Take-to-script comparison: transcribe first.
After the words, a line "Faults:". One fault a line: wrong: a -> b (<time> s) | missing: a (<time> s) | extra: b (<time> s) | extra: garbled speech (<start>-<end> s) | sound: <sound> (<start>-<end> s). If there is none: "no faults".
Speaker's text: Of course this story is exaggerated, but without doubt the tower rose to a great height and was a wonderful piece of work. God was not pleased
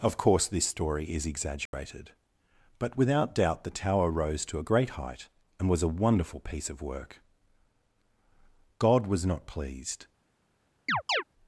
Of course this story is exaggerated, but without doubt the tower rose to a great height and was a wonderful piece of work. God was not pleased
Faults:
sound: dropout (1.7-1.7 s)
sound: chirp (10.9-11.2 s)